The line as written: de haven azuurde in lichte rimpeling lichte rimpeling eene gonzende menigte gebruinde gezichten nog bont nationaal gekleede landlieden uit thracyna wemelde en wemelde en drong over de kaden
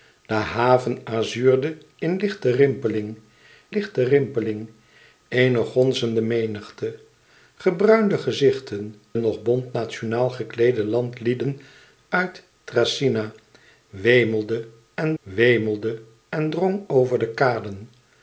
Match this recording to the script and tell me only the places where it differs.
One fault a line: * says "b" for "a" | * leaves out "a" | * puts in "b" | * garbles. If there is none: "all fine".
all fine